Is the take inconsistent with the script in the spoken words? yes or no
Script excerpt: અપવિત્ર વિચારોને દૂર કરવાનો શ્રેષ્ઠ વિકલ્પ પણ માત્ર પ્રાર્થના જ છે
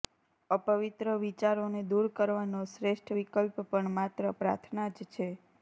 no